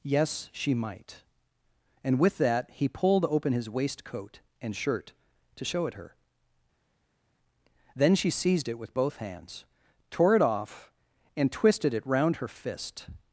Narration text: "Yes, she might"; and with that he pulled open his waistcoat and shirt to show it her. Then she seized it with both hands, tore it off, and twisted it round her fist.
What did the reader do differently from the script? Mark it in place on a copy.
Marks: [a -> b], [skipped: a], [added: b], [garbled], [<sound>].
"Yes, she might"; and with that he pulled open his waistcoat and shirt to show it her. Then she seized it with both hands, tore it off, and twisted it round her fist.